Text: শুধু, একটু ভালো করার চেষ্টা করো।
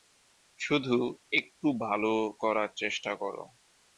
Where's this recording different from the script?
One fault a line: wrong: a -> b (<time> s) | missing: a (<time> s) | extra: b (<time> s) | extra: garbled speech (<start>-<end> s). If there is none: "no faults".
no faults